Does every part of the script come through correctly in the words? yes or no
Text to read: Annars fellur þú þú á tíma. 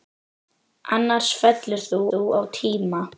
yes